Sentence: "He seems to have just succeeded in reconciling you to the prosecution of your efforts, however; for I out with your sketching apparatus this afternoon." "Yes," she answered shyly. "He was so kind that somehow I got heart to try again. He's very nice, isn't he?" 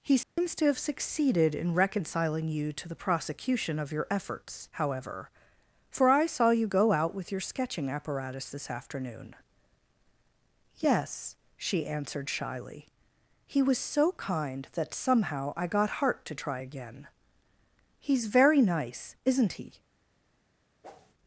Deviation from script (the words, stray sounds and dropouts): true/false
true